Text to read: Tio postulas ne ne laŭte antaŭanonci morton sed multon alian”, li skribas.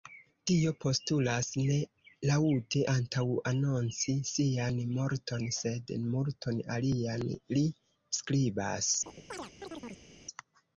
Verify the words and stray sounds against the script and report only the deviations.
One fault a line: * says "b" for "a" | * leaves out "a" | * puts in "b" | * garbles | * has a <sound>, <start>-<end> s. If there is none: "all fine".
* leaves out "ne"
* puts in "sian"
* has a chirp, 9.1-10.1 s